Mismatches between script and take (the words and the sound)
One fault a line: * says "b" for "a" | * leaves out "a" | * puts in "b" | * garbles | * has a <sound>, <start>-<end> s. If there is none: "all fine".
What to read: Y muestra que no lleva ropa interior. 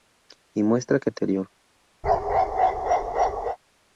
* leaves out "no lleva ropa"
* has a bark, 2.0-3.6 s